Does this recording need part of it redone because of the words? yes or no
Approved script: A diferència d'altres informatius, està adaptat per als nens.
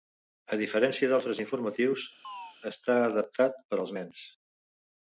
no